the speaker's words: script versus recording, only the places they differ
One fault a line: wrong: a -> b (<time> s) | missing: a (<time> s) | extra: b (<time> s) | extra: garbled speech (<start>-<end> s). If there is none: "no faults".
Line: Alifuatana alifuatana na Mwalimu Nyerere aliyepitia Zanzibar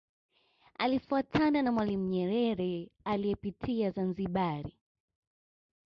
missing: alifuatana (1.6 s)